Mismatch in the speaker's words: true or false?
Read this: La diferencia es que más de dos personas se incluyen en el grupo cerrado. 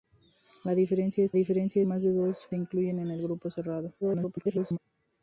true